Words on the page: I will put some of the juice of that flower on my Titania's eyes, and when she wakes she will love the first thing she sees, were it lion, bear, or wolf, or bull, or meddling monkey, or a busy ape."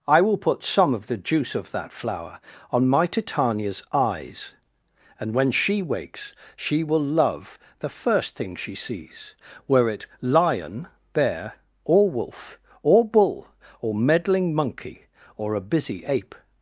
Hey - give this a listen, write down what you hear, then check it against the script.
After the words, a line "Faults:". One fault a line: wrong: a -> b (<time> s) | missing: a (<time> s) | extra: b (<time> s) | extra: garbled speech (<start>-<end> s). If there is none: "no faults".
I will put some of the juice of that flower on my Titania's eyes, and when she wakes she will love the first thing she sees, were it lion, bear, or wolf, or bull, or meddling monkey, or a busy ape."
Faults:
no faults